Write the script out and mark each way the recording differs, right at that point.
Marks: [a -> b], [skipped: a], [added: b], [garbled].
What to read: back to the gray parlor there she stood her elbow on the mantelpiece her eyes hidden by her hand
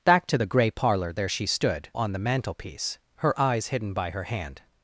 back to the gray parlor there she stood [skipped: her elbow] on the mantelpiece her eyes hidden by her hand